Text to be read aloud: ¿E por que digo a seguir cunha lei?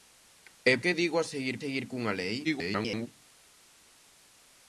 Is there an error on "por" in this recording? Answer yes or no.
yes